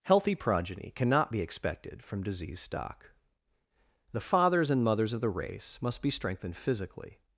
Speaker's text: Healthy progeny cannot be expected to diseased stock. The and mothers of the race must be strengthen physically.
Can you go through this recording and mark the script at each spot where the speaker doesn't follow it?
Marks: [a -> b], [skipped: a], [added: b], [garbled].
Healthy progeny cannot be expected [to -> from] diseased stock. The [added: fathers] and mothers of the race must be [strengthen -> strengthened] physically.